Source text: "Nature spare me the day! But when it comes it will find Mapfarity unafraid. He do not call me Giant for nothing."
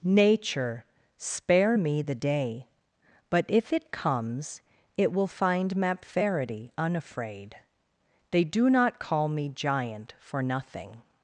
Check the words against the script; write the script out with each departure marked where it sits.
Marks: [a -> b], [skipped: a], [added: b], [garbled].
"Nature spare me the day! But [when -> if] it comes it will find Mapfarity unafraid. [He -> They] do not call me Giant for nothing."